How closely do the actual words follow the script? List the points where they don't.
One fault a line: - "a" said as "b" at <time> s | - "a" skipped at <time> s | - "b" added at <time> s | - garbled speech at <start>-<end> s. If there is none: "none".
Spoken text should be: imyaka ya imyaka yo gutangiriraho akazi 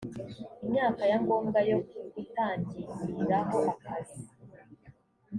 - "imyaka" said as "ngombwa" at 1.2 s